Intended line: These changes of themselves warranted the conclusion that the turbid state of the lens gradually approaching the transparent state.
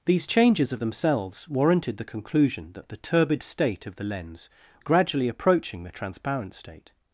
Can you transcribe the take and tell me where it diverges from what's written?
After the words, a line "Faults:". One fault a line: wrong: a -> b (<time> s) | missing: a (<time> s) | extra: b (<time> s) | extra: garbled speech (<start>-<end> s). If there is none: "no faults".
These changes of themselves warranted the conclusion that the turbid state of the lens gradually approaching the transparent state.
Faults:
no faults